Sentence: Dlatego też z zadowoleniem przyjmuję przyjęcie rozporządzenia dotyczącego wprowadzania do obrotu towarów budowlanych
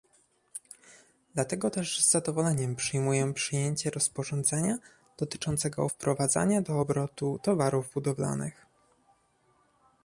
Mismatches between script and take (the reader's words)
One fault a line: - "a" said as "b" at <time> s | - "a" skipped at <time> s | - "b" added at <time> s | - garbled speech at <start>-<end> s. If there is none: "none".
none